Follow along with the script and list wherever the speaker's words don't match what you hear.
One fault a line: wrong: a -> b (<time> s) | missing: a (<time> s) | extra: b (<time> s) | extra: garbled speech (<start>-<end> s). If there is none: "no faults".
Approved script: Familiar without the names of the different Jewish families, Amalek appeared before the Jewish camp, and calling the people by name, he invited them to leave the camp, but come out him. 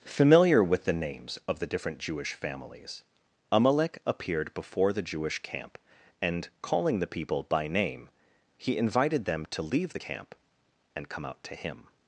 wrong: without -> with (0.6 s)
wrong: but -> and (11.0 s)
extra: to (11.4 s)